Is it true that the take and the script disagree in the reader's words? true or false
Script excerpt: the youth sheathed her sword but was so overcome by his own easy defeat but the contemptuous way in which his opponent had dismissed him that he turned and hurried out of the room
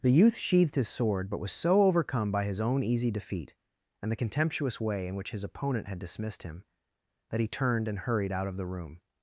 true